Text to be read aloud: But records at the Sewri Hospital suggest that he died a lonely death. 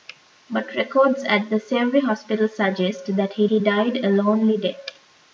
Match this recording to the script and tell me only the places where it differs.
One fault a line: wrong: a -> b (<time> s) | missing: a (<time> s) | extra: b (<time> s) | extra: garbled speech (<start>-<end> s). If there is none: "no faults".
extra: he (3.5 s)